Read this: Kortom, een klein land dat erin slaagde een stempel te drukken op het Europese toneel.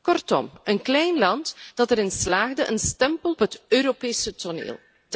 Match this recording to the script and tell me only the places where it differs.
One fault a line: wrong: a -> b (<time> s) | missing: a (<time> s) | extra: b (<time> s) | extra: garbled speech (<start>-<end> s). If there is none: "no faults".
missing: te drukken op (3.4 s)